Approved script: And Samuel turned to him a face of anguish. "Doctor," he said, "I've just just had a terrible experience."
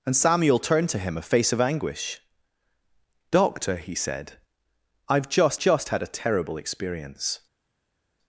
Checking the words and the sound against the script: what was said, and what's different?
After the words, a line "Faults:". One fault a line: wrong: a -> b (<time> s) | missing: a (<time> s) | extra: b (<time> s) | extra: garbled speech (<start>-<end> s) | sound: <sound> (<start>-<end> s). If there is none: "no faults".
And Samuel turned to him a face of anguish. "Doctor," he said, "I've just just had a terrible experience."
Faults:
no faults